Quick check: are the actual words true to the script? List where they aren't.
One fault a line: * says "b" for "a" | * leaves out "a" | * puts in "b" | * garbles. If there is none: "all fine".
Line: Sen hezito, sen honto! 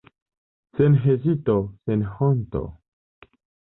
all fine